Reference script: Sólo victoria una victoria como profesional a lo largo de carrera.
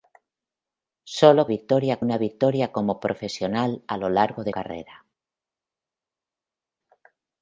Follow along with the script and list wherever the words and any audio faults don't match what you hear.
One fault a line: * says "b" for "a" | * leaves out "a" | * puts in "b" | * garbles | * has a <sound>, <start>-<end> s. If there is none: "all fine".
all fine